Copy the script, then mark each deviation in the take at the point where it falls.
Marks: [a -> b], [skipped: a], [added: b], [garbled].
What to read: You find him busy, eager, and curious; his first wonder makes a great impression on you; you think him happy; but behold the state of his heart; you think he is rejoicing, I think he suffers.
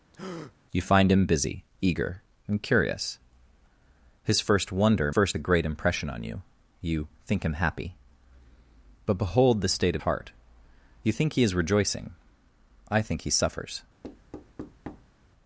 You find him busy, eager, and curious; his first wonder [makes -> first] a great impression on you; you think him happy; but behold the state of [skipped: his] heart; you think he is rejoicing, I think he suffers.